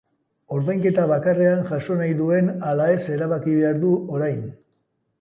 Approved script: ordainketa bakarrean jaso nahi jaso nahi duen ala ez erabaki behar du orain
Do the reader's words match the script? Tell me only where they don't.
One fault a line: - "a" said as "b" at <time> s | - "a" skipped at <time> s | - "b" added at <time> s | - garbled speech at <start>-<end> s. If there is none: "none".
- "jaso nahi" skipped at 2.2 s